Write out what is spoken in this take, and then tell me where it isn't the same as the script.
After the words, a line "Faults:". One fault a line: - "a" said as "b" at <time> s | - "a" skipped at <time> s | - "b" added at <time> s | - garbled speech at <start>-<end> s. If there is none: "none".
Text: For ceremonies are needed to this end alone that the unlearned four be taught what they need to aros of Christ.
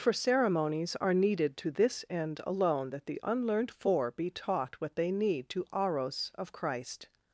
For ceremonies are needed to this end alone that the unlearned four be taught what they need to aros of Christ.
Faults:
none